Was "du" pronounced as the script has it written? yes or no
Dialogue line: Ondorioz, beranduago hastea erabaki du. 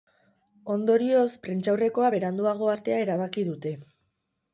no